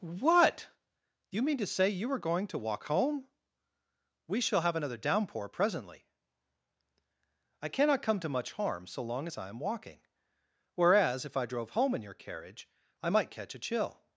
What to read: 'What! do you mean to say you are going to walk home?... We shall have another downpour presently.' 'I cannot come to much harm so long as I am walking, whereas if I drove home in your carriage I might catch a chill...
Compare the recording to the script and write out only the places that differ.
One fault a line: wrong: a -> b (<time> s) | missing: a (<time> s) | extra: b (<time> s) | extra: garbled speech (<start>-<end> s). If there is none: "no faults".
no faults